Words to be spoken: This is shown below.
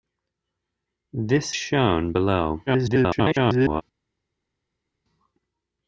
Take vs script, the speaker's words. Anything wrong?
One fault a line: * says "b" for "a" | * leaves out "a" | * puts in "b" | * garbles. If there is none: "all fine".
* leaves out "is"
* garbles